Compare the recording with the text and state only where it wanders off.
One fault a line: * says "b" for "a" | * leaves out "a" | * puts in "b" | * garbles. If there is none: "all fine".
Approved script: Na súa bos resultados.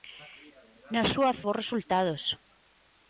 all fine